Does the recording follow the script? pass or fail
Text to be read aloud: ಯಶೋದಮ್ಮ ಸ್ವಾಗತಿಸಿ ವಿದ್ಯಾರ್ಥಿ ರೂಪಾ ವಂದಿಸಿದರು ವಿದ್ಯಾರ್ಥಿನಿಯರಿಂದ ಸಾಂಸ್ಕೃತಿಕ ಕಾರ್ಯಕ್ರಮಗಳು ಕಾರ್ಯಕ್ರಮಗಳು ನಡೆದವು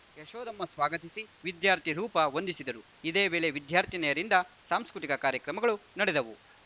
fail